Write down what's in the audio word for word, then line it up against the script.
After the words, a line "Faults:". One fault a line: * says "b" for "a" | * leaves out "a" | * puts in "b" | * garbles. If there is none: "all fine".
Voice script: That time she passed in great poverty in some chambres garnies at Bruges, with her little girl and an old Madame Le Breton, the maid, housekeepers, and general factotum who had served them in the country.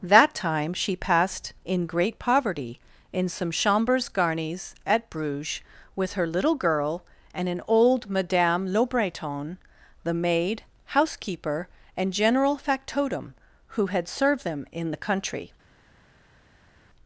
That time she passed in great poverty in some chambres garnies at Bruges, with her little girl and an old Madame Le Breton, the maid, housekeeper, and general factotum who had served them in the country.
Faults:
* says "housekeeper" for "housekeepers"